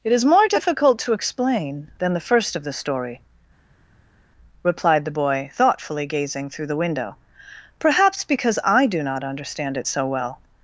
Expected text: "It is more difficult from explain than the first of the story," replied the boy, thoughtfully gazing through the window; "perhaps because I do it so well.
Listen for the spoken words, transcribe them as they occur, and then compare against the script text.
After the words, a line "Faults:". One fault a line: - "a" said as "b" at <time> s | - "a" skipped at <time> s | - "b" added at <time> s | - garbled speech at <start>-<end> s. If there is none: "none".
"It is more difficult to explain than the first of the story," replied the boy, thoughtfully gazing through the window; "perhaps because I do not understand it so well.
Faults:
- "from" said as "to" at 1.0 s
- "not understand" added at 9.0 s